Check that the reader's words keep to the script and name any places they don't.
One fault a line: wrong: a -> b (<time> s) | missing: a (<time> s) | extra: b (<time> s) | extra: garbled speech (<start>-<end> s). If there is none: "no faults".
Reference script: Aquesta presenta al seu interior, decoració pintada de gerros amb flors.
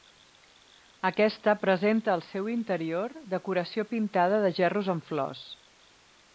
no faults